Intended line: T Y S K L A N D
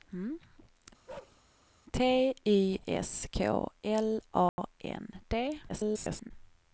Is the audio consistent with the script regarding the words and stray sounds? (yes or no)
no